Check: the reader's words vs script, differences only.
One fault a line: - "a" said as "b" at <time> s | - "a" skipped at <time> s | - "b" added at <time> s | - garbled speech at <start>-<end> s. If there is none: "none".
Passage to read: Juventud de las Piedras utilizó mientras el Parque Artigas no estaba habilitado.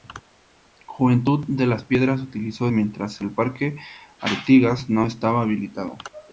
none